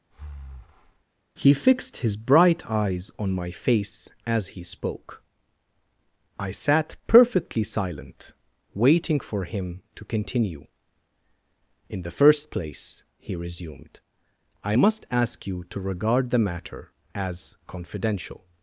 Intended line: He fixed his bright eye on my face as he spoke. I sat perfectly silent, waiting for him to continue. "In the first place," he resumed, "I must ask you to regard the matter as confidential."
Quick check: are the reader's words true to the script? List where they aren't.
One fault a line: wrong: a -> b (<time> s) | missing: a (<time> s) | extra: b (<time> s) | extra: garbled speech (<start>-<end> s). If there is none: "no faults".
wrong: eye -> eyes (2.7 s)